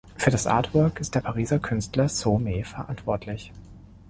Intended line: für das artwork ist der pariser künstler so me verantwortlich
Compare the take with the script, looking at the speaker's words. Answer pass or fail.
pass